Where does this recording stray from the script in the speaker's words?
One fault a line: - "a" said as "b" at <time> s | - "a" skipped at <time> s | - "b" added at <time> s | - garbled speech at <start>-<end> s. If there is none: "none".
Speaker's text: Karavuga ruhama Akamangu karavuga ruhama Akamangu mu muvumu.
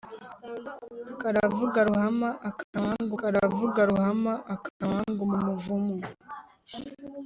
none